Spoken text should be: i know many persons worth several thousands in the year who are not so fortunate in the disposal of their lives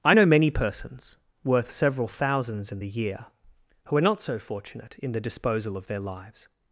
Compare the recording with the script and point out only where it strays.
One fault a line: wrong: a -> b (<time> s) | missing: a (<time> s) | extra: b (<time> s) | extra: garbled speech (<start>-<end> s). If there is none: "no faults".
no faults